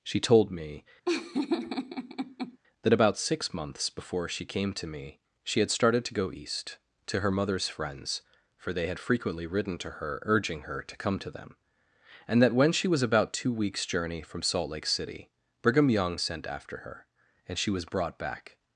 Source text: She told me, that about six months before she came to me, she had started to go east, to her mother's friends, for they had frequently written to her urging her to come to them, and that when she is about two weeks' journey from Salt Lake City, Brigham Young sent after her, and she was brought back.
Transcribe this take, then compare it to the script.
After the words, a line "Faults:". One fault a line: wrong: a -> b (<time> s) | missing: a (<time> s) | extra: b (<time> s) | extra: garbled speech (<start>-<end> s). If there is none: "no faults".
She told me, that about six months before she came to me, she had started to go east, to her mother's friends, for they had frequently written to her urging her to come to them, and that when she was about two weeks' journey from Salt Lake City, Brigham Young sent after her, and she was brought back.
Faults:
wrong: is -> was (12.9 s)